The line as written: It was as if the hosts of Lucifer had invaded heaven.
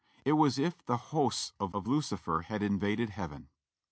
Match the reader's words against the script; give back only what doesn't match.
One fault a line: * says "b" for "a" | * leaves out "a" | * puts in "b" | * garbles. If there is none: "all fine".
* puts in "of"